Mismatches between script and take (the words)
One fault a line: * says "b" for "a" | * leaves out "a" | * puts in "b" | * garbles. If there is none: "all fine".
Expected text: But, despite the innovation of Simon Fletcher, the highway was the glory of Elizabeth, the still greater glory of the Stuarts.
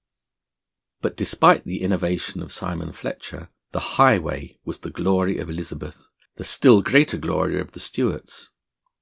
all fine